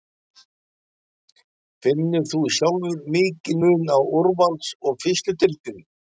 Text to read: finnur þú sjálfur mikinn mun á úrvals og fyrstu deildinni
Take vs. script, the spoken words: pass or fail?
pass